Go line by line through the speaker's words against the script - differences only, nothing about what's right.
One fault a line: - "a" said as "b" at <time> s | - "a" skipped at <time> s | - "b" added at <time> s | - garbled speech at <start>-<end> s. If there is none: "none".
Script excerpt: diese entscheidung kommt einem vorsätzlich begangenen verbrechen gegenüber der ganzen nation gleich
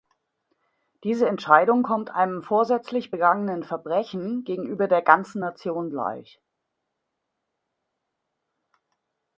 none